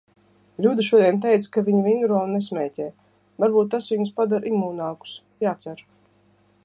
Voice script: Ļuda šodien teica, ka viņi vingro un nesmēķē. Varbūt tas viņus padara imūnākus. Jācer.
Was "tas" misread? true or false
false